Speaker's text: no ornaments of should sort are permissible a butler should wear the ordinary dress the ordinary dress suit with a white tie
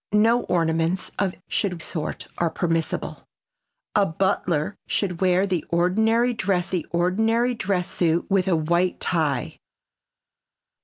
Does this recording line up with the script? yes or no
yes